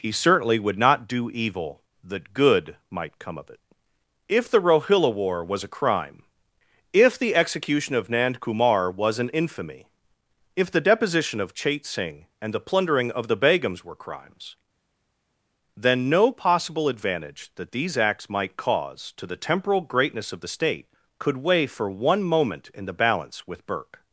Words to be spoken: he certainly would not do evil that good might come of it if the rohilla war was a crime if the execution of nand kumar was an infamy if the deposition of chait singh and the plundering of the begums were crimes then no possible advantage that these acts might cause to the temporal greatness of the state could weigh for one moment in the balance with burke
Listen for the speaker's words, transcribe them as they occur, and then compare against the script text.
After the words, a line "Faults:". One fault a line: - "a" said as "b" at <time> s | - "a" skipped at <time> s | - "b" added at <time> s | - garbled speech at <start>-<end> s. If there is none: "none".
he certainly would not do evil that good might come of it if the rohilla war was a crime if the execution of nand kumar was an infamy if the deposition of chait singh and the plundering of the begums were crimes then no possible advantage that these acts might cause to the temporal greatness of the state could weigh for one moment in the balance with burke
Faults:
none